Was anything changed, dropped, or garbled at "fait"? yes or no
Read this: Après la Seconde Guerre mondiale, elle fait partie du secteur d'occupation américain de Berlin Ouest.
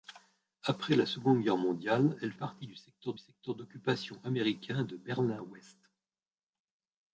yes